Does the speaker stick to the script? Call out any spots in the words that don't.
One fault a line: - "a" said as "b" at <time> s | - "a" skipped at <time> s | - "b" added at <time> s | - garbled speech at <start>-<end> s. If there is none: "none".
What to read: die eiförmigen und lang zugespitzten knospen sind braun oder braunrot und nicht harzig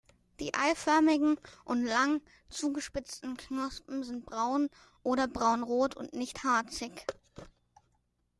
none